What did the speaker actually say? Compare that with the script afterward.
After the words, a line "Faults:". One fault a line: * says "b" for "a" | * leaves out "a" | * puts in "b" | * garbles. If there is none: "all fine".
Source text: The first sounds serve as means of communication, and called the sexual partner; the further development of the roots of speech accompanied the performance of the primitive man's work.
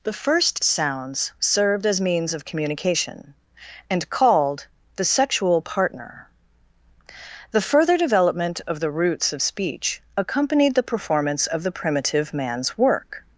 The first sounds served as means of communication, and called the sexual partner; the further development of the roots of speech accompanied the performance of the primitive man's work.
Faults:
* says "served" for "serve"